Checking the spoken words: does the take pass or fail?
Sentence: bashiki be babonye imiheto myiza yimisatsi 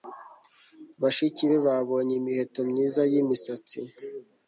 pass